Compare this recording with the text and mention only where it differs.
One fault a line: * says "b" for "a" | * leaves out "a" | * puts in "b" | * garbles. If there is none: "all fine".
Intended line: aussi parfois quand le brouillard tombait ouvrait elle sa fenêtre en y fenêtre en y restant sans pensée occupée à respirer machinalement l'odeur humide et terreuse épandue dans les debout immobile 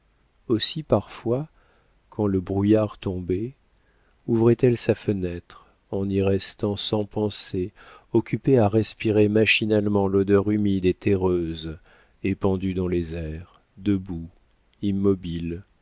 * leaves out "fenêtre en y"
* puts in "airs"